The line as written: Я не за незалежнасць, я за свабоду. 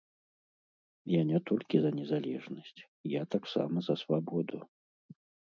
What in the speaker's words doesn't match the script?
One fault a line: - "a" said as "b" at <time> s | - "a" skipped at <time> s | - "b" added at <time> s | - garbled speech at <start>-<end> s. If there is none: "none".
- "толькі" added at 1.5 s
- "таксама" added at 3.4 s